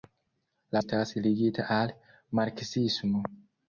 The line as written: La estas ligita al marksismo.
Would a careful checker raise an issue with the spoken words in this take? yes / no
no